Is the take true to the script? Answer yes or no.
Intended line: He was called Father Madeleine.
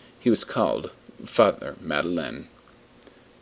yes